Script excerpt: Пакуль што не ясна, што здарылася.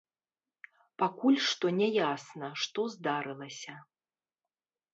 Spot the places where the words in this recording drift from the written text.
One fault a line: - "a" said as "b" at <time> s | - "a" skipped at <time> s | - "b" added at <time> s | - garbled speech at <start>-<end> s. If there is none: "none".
none